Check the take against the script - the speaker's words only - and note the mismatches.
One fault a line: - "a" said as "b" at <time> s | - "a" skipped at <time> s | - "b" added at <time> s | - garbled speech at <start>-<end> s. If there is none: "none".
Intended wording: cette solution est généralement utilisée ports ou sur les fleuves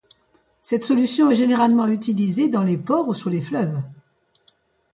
- "dans les" added at 2.5 s